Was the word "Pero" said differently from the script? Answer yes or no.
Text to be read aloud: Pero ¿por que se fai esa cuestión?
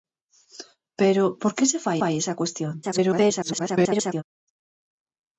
no